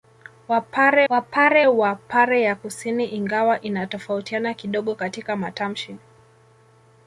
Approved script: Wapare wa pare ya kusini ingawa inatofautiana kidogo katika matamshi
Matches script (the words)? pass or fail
fail